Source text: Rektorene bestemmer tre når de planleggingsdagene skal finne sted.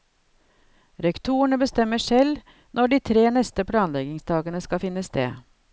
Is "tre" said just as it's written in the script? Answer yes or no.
no